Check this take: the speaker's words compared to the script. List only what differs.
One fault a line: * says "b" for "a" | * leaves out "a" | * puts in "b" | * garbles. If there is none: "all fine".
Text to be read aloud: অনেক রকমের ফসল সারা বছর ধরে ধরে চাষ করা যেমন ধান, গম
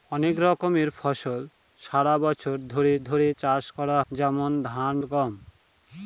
all fine